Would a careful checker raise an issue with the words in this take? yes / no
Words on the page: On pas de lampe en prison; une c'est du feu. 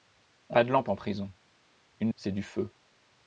no